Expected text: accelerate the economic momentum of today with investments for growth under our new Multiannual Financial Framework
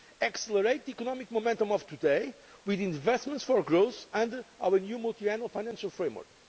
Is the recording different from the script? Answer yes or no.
no